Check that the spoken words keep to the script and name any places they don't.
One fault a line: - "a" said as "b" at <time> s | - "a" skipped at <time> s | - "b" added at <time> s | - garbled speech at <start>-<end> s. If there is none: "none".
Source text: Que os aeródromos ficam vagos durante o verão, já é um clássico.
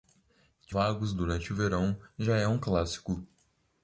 - "os aeródromos ficam" skipped at 0.8 s